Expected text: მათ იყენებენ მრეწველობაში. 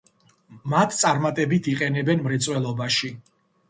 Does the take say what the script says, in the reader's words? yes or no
no